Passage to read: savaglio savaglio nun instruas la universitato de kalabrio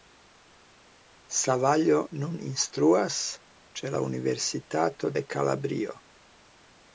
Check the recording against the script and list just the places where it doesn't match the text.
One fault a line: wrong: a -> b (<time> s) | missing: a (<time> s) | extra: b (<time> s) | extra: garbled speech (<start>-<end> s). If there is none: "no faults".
missing: savaglio (2.0 s)
extra: ĉe (3.8 s)